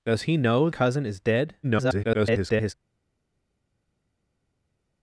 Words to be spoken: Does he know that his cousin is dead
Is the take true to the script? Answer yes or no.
no